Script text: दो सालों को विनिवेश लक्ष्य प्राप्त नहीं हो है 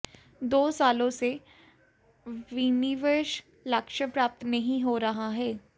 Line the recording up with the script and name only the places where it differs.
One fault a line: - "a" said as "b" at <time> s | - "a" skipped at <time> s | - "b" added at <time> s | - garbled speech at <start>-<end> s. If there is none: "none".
- "को" said as "से" at 1.1 s
- "रहा" added at 5.0 s